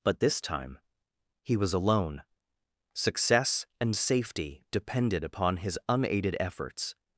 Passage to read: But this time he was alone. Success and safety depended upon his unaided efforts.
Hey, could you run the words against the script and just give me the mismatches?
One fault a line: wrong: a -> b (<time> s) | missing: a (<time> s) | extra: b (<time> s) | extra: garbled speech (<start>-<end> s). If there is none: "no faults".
no faults